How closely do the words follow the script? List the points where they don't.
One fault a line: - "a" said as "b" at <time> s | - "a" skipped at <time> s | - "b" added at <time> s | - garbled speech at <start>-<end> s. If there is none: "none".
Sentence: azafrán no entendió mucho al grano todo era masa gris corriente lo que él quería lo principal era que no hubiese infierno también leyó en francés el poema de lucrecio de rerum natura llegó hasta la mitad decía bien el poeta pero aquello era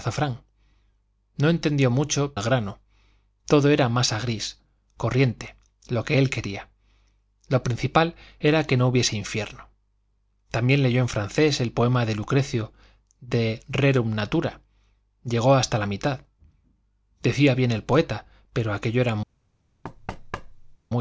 none